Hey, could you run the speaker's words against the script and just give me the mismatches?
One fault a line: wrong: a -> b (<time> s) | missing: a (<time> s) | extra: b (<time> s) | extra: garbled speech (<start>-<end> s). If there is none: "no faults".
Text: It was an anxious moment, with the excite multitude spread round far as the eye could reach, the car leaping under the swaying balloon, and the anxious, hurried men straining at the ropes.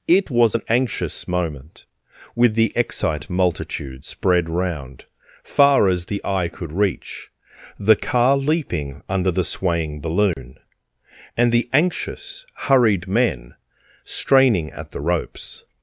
no faults